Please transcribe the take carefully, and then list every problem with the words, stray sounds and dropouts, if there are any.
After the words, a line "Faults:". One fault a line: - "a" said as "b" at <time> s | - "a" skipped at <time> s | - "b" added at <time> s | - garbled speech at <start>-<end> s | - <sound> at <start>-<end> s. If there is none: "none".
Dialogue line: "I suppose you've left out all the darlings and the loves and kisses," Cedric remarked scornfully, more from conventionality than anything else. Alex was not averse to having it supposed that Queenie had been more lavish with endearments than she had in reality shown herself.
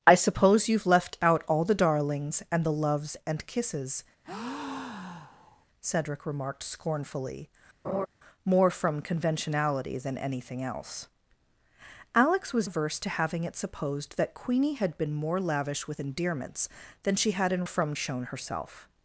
"I suppose you've left out all the darlings and the loves and kisses," Cedric remarked scornfully, more from conventionality than anything else. Alex was averse to having it supposed that Queenie had been more lavish with endearments than she had in from shown herself.
Faults:
- breath at 4.2-5.7 s
- laugh at 7.8-8.1 s
- "not" skipped at 12.7 s
- "reality" said as "from" at 17.6 s